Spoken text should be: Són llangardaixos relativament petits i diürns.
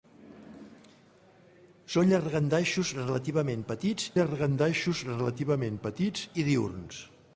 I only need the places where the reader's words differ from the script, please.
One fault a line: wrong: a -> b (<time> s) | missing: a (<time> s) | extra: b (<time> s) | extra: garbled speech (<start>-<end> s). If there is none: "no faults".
extra: llangardaixos relativament petits (4.2 s)